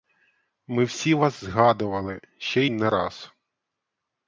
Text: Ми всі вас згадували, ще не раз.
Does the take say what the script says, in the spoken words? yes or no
yes